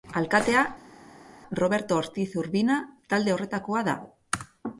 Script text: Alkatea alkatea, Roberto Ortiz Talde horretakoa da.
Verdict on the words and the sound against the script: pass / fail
fail